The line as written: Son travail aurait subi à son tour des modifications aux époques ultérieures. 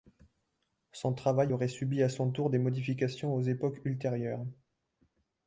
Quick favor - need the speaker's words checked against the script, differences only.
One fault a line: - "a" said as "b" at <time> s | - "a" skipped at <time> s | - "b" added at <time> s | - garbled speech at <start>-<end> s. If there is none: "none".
none